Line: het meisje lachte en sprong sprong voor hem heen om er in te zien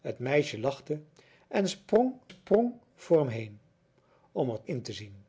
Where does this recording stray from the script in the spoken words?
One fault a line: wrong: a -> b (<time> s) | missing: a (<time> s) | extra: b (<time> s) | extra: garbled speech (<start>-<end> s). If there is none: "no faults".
no faults